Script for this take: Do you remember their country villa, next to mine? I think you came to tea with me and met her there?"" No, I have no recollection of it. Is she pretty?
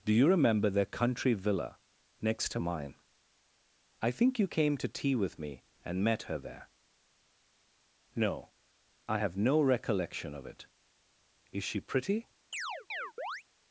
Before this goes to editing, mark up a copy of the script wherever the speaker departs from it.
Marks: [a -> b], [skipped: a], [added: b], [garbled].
Do you remember their country villa, next to mine? I think you came to tea with me and met her there?"" No, I have no recollection of it. Is she pretty?